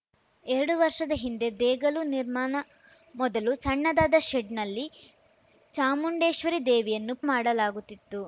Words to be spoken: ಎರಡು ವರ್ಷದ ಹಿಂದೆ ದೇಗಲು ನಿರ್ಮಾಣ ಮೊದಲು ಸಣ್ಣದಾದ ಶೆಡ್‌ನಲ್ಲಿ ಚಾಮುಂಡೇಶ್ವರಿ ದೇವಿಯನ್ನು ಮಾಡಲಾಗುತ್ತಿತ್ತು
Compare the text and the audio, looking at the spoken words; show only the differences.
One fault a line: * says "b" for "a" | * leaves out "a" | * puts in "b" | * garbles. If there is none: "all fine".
all fine